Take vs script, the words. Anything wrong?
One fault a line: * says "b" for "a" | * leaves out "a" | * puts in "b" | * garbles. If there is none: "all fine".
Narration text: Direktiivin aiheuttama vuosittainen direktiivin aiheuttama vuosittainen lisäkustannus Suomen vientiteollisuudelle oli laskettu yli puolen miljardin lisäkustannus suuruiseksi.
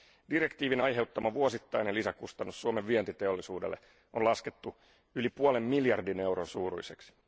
* leaves out "direktiivin aiheuttama vuosittainen"
* says "on" for "oli"
* says "euron" for "lisäkustannus"